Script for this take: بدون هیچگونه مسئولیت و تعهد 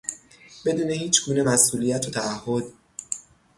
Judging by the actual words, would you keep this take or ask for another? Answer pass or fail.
pass